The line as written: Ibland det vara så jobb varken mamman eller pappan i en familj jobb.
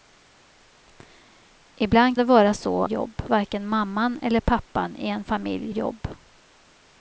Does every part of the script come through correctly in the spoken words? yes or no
yes